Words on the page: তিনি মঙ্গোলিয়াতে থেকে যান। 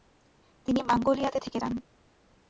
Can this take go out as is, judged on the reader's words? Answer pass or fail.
pass